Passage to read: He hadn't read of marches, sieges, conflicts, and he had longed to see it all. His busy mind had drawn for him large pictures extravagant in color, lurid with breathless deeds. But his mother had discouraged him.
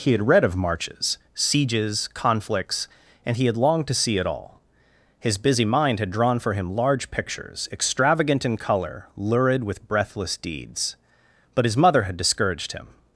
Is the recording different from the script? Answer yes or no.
yes